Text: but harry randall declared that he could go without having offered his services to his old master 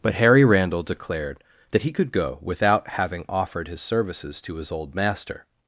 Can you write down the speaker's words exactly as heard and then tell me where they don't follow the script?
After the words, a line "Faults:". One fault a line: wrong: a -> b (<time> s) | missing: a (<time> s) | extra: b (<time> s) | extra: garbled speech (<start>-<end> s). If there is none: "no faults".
but harry randall declared that he could go without having offered his services to his old master
Faults:
no faults